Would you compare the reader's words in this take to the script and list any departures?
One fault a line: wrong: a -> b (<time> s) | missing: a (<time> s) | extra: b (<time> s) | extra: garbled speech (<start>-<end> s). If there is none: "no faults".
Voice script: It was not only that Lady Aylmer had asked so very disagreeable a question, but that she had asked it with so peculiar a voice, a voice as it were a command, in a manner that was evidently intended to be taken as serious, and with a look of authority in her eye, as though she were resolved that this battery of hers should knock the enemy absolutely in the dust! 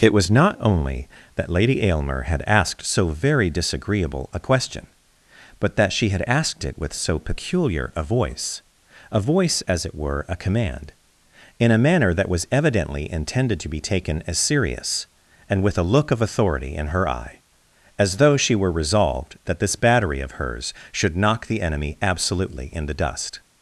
no faults